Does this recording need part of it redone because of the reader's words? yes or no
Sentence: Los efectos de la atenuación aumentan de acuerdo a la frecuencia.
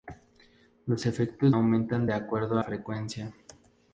yes